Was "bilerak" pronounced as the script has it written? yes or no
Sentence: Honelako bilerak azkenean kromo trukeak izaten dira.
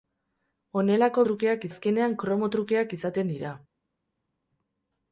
no